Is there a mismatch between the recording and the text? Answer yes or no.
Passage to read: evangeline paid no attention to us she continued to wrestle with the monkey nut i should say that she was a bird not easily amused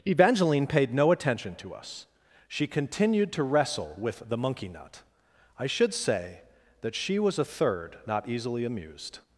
yes